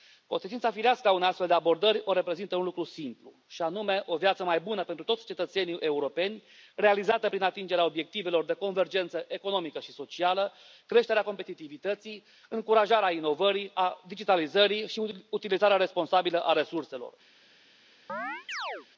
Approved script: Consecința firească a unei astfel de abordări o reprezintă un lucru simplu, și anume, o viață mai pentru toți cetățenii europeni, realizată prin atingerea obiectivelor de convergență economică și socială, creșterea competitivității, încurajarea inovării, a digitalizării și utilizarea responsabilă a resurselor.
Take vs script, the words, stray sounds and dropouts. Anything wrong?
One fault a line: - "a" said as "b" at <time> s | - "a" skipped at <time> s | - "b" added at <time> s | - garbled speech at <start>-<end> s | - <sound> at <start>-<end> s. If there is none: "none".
- "bună" added at 4.6 s
- chirp at 18.1-18.9 s